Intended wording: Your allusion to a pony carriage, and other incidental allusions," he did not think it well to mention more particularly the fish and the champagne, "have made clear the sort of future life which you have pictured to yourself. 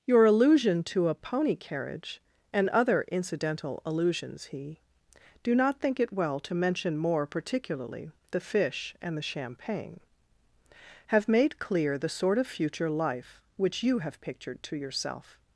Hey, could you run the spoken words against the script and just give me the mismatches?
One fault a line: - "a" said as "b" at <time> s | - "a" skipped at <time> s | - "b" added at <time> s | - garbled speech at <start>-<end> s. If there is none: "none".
- "did" said as "do" at 5.4 s